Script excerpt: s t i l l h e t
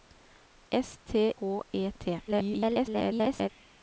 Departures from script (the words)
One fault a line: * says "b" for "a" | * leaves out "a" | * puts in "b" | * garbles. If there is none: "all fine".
* leaves out "i l l"
* garbles